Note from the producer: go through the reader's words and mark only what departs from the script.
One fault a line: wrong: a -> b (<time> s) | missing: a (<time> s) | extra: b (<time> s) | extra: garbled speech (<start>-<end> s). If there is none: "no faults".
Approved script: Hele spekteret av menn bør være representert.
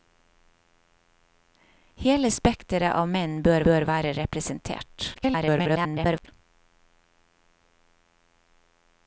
extra: bør (3.7 s)
extra: garbled speech (5.1-6.3 s)